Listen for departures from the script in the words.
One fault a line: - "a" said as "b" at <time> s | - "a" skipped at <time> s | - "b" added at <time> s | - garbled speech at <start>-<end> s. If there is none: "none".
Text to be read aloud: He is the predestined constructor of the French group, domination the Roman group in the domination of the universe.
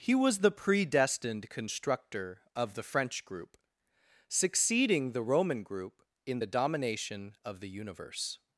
- "is" said as "was" at 0.1 s
- "domination" said as "succeeding" at 4.3 s